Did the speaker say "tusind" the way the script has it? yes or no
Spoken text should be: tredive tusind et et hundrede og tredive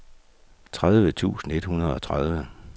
yes